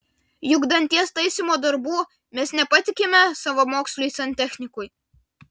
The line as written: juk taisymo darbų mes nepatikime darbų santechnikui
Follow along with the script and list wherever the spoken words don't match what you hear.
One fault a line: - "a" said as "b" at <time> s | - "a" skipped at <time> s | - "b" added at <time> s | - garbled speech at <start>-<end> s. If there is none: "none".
- "danties" added at 0.7 s
- "darbų" said as "savamoksliui" at 3.4 s